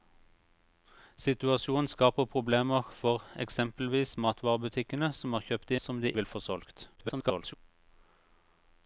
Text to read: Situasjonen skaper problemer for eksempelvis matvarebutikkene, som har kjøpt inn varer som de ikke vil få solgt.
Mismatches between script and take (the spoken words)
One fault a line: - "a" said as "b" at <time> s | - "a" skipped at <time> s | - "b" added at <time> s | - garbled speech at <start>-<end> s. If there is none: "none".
- "inn varer" skipped at 5.7 s
- "ikke" skipped at 6.1 s
- garbled speech at 7.0-7.5 s